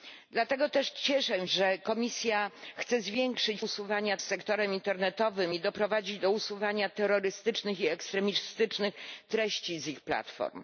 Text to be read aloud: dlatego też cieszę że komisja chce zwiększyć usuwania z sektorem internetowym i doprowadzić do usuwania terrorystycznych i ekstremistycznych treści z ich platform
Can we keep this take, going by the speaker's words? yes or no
yes